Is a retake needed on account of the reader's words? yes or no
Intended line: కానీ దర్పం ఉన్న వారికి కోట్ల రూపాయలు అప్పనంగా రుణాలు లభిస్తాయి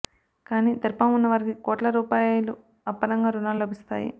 no